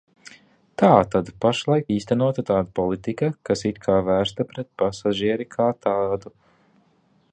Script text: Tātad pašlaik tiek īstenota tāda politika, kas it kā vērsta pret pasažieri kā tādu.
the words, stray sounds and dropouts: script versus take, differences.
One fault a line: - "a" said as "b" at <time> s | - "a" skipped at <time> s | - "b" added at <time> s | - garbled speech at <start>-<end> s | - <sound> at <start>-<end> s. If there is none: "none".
- "tiek" skipped at 1.9 s